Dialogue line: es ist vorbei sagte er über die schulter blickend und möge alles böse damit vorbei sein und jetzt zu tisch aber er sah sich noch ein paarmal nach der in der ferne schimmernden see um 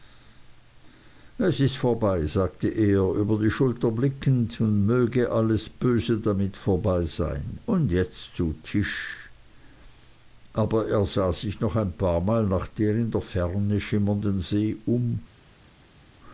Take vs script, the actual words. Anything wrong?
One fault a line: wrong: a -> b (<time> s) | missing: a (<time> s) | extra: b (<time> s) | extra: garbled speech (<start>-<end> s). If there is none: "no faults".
no faults